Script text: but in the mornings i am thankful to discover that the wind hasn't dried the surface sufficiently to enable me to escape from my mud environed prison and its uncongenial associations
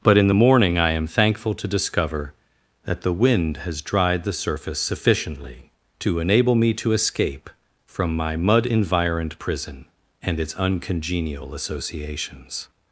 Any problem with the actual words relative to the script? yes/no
yes